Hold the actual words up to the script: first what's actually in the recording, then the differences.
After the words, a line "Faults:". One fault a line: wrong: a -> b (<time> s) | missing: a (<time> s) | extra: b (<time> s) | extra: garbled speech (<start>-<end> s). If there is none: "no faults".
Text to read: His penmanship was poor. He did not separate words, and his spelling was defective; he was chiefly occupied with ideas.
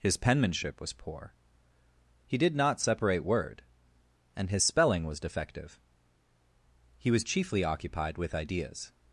His penmanship was poor. He did not separate word, and his spelling was defective; he was chiefly occupied with ideas.
Faults:
wrong: words -> word (3.2 s)